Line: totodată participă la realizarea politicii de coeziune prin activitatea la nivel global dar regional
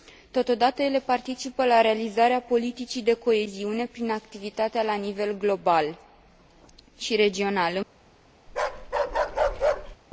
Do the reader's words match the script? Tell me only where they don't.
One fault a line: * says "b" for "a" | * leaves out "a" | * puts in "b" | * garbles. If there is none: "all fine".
* puts in "ele"
* says "și" for "dar"